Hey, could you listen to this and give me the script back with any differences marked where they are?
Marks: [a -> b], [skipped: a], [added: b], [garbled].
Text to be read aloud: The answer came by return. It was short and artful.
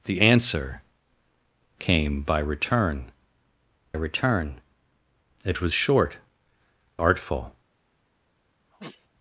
The answer came by return. [added: return] It was short [skipped: and] artful.